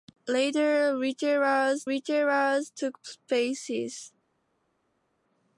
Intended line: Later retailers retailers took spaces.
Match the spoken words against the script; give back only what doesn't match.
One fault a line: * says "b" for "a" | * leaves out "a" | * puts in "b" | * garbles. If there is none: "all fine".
all fine